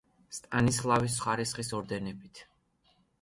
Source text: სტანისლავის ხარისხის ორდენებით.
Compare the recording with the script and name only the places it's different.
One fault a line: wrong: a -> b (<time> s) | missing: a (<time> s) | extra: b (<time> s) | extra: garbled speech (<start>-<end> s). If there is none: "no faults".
no faults